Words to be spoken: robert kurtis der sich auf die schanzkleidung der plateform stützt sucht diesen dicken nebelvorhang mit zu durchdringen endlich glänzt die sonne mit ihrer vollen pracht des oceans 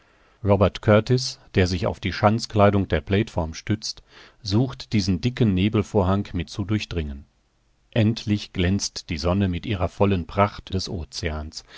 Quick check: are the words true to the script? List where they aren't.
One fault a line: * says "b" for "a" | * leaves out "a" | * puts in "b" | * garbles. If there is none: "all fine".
all fine